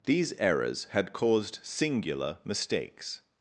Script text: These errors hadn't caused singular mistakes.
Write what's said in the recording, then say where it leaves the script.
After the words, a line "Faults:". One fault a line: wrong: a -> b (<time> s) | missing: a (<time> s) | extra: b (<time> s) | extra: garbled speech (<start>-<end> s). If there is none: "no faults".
These errors had caused singular mistakes.
Faults:
wrong: hadn't -> had (0.9 s)